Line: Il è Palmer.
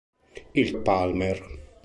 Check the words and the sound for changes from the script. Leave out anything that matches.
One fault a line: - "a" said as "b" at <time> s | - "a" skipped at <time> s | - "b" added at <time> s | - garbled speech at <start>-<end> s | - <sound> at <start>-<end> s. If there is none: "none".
none